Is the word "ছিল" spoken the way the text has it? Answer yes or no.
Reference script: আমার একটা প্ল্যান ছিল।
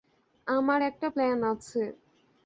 no